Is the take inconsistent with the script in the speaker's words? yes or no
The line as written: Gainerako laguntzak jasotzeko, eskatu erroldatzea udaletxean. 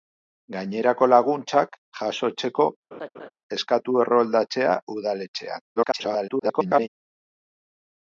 yes